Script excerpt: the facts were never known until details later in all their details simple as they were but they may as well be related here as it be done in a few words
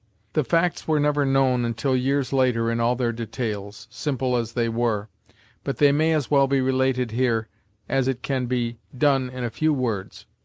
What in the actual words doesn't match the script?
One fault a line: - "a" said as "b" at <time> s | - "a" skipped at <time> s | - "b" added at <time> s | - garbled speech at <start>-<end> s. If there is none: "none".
- "details" said as "years" at 1.9 s
- "can" added at 8.2 s